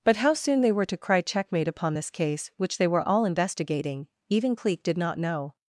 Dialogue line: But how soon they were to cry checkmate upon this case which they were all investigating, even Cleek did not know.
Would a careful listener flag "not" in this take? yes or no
no